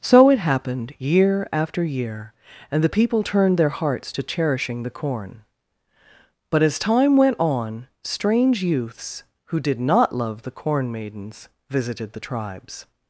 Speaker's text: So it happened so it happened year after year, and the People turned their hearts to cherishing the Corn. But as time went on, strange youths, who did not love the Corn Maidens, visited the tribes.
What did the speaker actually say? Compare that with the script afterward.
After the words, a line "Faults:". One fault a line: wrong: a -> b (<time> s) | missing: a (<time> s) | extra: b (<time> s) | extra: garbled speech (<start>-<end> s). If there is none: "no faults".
So it happened year after year, and the People turned their hearts to cherishing the Corn. But as time went on, strange youths, who did not love the Corn Maidens, visited the tribes.
Faults:
missing: so it happened (0.9 s)